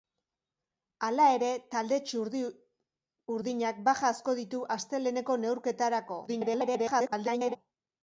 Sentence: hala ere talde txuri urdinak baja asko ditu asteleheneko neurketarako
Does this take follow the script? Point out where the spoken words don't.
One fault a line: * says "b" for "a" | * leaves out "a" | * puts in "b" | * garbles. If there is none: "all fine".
* garbles